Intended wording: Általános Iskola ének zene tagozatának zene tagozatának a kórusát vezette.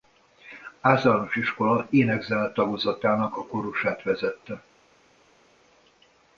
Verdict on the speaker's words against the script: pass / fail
fail